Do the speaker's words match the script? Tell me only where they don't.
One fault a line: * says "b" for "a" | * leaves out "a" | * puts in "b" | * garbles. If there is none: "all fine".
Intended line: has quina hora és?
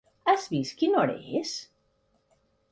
* puts in "vist"